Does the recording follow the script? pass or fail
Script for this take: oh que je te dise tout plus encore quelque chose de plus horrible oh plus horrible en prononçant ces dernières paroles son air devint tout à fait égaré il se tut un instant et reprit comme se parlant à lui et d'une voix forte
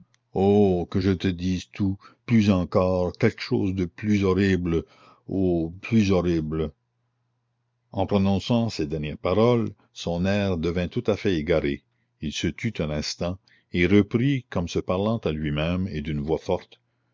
fail